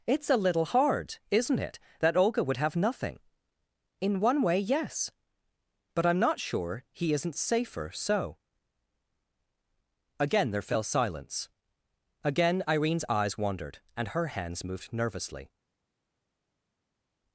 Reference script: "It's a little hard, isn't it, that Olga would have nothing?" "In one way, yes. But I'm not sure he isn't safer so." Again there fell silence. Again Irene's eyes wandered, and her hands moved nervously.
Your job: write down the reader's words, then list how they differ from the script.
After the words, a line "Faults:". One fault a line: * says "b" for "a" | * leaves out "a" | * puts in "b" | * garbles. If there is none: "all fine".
"It's a little hard, isn't it, that Olga would have nothing?" "In one way, yes. But I'm not sure he isn't safer so." Again there fell silence. Again Irene's eyes wandered, and her hands moved nervously.
Faults:
all fine